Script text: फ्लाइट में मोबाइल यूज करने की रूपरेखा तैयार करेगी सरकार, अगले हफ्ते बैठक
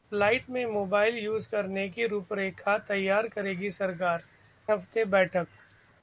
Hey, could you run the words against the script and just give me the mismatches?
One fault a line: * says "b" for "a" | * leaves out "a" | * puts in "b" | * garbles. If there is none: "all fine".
* leaves out "अगले"